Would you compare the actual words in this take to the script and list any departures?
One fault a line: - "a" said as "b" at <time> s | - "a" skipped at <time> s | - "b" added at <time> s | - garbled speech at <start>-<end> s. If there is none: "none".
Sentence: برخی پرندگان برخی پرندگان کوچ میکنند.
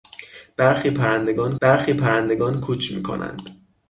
none